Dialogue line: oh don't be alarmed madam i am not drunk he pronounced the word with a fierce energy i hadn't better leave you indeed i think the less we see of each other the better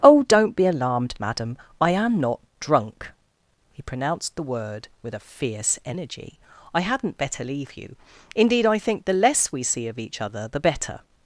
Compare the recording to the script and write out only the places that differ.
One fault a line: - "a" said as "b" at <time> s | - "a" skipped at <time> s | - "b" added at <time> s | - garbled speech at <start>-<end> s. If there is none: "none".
none